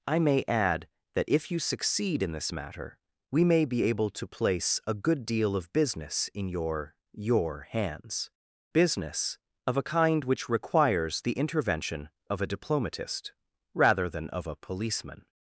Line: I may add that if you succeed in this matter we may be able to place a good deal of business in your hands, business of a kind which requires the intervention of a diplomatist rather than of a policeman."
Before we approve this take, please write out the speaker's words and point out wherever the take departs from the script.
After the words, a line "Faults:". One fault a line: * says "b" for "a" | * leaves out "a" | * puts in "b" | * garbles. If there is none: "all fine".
I may add that if you succeed in this matter we may be able to place a good deal of business in your your hands, business of a kind which requires the intervention of a diplomatist rather than of a policeman."
Faults:
* puts in "your"